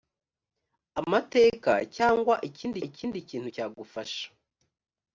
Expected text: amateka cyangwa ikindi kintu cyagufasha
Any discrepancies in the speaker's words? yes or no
yes